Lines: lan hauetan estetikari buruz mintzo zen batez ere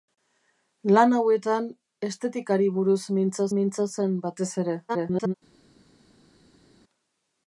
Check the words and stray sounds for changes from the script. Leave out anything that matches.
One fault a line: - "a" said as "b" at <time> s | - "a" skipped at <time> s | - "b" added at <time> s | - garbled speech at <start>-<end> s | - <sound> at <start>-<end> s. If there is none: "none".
- "mintzo" added at 3.6 s
- garbled speech at 4.9-5.3 s